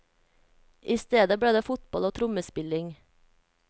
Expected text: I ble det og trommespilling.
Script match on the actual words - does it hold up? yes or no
no